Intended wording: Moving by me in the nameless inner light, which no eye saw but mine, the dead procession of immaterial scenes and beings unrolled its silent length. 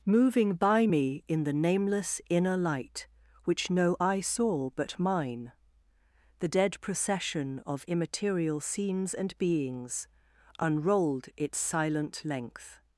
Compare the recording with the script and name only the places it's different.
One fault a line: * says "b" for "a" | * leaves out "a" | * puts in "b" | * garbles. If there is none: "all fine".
all fine